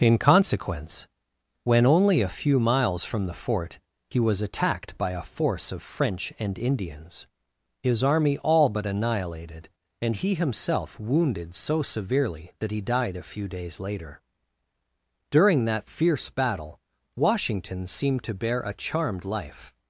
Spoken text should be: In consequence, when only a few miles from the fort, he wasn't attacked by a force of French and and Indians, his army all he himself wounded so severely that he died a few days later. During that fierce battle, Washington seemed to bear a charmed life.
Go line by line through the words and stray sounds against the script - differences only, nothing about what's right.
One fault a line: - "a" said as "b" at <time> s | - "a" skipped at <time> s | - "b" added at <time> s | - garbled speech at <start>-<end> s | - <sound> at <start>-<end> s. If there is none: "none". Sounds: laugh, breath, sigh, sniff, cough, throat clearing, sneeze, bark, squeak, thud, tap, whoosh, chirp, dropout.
- "wasn't" said as "was" at 4.2 s
- "and" skipped at 6.6 s
- "but annihilated and" added at 8.7 s